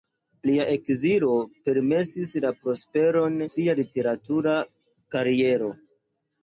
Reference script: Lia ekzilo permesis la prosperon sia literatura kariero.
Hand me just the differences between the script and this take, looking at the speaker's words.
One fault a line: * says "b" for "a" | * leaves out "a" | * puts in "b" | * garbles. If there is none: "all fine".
all fine